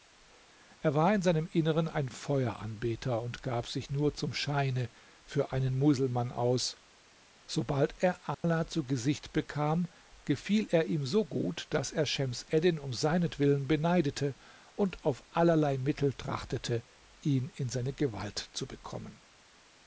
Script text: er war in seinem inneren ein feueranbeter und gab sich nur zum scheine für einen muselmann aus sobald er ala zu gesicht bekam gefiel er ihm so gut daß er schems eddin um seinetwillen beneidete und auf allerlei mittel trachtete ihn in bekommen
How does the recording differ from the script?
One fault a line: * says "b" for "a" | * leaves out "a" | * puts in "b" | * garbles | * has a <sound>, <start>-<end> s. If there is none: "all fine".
* has a dropout, 8.3-8.4 s
* puts in "seine gewalt zu"